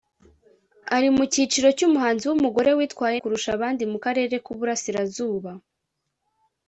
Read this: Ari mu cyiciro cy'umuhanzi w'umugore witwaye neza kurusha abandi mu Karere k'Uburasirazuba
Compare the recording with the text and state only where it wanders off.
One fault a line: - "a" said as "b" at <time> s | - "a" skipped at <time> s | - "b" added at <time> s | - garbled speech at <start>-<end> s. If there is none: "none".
- "neza" skipped at 3.2 s